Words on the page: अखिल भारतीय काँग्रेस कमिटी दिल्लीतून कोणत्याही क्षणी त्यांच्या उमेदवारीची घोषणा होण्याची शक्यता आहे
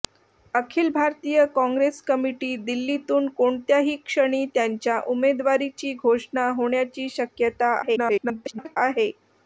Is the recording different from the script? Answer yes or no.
yes